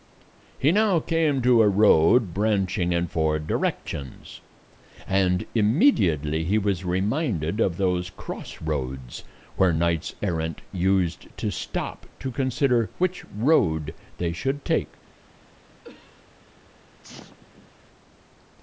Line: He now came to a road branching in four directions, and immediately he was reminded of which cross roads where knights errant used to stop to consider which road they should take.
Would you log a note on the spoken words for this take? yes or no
yes